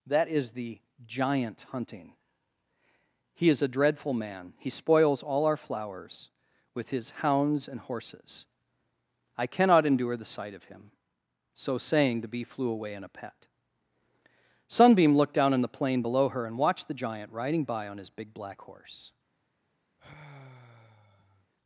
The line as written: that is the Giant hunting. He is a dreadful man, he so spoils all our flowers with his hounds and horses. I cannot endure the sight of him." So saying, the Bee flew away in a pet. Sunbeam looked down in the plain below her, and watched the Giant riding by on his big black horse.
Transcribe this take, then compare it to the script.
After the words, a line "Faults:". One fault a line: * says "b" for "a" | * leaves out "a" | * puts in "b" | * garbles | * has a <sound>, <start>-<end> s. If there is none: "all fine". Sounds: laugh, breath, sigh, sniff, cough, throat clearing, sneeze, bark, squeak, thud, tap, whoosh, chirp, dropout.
that is the Giant hunting. He is a dreadful man, he spoils all our flowers with his hounds and horses. I cannot endure the sight of him." So saying, the Bee flew away in a pet. Sunbeam looked down in the plain below her, and watched the Giant riding by on his big black horse.
Faults:
* leaves out "so"
* has a sigh, 20.0-21.5 s